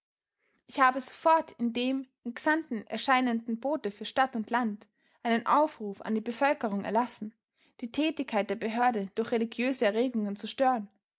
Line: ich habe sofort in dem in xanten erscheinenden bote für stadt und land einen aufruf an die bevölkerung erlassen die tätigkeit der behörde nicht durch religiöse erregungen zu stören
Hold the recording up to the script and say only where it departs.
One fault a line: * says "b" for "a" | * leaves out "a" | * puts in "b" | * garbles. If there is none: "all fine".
* leaves out "nicht"